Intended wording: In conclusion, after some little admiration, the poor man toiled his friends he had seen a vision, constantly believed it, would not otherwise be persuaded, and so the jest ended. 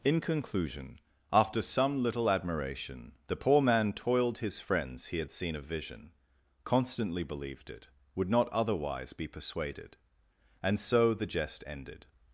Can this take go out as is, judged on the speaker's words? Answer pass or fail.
pass